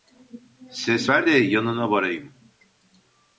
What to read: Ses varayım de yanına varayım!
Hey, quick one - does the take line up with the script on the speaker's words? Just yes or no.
no